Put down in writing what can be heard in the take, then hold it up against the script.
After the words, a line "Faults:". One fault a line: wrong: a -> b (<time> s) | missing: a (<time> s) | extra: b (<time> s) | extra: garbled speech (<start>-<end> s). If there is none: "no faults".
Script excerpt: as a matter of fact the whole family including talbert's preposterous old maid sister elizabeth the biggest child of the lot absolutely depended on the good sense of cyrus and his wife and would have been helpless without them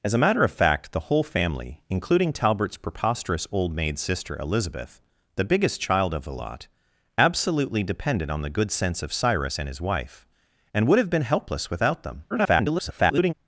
as a matter of fact the whole family including talbert's preposterous old maid sister elizabeth the biggest child of the lot absolutely depended on the good sense of cyrus and his wife and would have been helpless without them [garbled]
Faults:
extra: garbled speech (12.3-13.3 s)